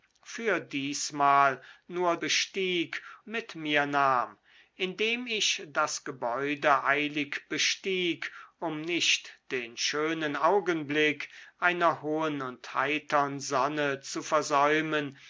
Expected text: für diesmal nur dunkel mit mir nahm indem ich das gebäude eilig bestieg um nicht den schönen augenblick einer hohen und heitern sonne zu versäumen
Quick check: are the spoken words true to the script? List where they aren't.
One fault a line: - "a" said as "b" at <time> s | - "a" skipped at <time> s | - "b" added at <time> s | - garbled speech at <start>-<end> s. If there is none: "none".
- "dunkel" said as "bestieg" at 2.2 s